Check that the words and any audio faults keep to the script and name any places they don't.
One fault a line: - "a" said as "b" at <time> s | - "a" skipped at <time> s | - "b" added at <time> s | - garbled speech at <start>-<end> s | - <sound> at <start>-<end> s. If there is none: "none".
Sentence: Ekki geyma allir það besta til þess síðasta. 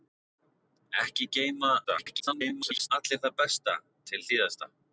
- garbled speech at 1.8-2.9 s
- "þess" skipped at 4.2 s